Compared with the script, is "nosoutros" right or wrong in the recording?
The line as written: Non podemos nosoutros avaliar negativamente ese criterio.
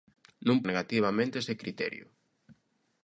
wrong